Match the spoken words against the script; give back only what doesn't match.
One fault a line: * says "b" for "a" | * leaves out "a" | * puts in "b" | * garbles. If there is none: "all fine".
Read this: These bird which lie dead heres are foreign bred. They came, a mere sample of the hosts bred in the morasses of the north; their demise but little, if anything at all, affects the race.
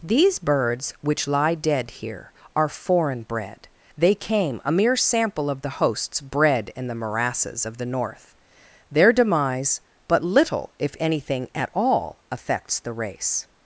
* says "birds" for "bird"
* says "here" for "heres"